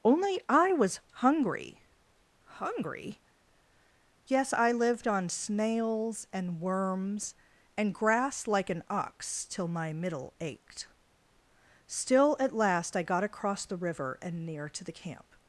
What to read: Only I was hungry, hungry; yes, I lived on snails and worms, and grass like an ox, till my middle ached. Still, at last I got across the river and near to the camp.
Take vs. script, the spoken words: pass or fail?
pass